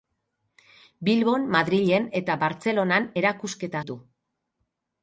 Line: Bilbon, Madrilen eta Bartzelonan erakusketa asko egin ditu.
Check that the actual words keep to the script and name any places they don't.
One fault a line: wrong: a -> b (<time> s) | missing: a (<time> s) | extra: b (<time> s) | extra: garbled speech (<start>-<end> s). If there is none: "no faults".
missing: asko egin (3.9 s)